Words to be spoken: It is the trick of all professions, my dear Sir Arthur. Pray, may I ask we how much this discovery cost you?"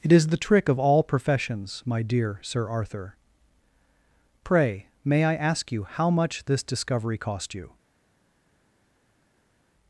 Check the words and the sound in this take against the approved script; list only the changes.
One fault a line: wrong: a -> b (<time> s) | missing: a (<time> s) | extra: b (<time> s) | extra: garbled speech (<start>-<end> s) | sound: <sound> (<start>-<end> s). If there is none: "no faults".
wrong: we -> you (5.7 s)